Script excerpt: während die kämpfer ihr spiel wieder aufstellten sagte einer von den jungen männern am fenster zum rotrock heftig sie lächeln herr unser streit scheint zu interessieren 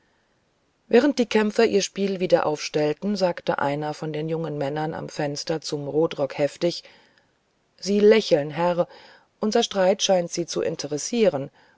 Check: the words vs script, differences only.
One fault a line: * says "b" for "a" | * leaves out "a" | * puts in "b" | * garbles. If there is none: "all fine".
* puts in "sie"